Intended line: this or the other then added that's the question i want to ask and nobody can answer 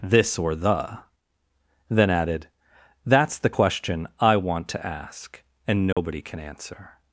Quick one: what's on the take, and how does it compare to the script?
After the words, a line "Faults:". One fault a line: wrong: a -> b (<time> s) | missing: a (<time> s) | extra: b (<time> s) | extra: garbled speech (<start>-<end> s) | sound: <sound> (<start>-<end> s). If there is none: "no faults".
this or the then added that's the question i want to ask and nobody can answer
Faults:
missing: other (1.0 s)
sound: dropout (5.9-6.0 s)